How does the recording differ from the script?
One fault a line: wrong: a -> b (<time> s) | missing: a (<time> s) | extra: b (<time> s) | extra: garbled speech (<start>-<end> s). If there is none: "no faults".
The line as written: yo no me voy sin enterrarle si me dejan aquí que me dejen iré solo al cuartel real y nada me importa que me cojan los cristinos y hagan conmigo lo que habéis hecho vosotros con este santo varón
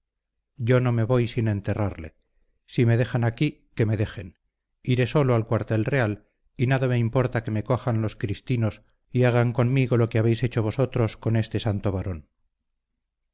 no faults